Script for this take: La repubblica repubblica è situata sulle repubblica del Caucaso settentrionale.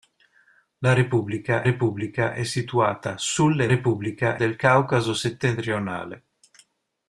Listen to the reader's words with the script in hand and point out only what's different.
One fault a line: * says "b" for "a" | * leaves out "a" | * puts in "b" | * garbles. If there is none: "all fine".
all fine